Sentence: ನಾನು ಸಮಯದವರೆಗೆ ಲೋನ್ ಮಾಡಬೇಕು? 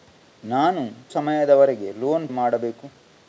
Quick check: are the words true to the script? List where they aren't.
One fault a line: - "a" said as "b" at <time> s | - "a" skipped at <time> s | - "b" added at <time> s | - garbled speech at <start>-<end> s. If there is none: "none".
none